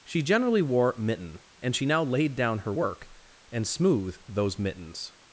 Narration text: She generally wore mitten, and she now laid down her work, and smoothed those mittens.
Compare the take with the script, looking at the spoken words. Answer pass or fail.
pass